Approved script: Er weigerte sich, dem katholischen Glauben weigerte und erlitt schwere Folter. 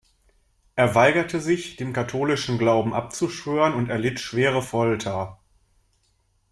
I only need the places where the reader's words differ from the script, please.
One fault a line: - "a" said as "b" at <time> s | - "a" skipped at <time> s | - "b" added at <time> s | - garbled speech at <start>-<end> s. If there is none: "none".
- "weigerte" said as "abzuschwören" at 2.9 s